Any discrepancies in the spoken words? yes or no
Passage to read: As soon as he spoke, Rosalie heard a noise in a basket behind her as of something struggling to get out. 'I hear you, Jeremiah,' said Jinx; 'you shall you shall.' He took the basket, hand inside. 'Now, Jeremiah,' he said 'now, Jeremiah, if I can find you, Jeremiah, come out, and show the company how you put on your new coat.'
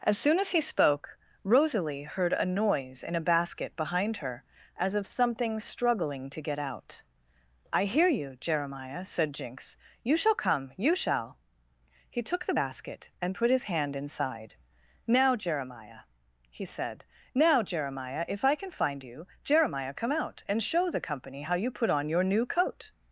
yes